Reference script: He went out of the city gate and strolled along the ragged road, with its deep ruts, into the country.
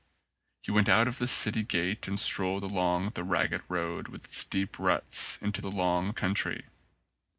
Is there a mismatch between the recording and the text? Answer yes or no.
yes